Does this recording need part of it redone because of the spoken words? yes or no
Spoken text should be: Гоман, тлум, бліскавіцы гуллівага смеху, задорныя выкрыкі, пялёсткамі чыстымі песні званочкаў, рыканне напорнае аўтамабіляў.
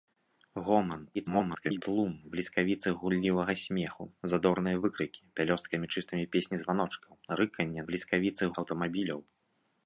yes